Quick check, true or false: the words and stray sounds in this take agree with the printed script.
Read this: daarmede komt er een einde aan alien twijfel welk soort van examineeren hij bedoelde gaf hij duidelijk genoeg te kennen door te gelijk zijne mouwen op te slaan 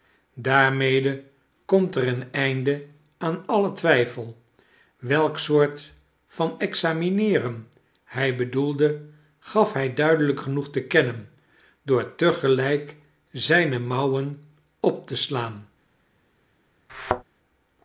false